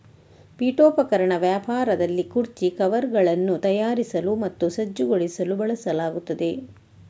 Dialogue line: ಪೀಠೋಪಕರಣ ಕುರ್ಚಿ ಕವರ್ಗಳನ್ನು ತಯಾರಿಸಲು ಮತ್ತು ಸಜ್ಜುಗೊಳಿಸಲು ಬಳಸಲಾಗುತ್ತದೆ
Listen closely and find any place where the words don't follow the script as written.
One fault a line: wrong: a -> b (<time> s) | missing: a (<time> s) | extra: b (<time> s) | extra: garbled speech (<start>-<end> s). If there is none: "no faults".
extra: ವ್ಯಾಪಾರದಲ್ಲಿ (1.4 s)